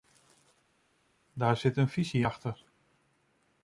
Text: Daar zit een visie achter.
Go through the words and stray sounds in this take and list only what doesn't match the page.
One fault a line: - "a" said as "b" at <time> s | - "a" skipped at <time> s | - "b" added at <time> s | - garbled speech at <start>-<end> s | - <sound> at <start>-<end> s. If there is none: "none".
none